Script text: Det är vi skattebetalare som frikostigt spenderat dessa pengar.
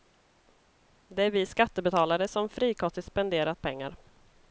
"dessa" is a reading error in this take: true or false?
true